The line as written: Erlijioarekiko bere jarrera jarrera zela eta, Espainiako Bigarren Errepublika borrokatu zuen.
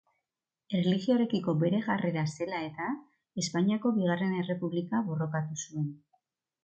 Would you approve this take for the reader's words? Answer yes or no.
no